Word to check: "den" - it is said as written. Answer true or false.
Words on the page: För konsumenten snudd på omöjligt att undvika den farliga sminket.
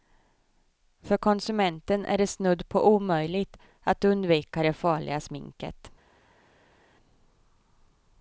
false